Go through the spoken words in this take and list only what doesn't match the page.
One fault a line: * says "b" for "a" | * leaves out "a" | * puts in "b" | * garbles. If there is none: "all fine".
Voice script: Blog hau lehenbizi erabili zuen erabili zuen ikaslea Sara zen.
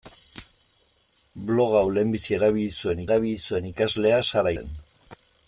all fine